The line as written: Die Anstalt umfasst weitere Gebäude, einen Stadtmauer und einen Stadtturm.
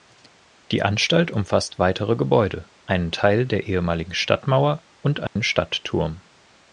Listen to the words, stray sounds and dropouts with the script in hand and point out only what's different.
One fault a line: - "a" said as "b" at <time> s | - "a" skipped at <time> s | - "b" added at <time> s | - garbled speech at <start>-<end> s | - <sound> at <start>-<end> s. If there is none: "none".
- "Teil der ehemaligen" added at 3.1 s
- dropout at 5.3-5.4 s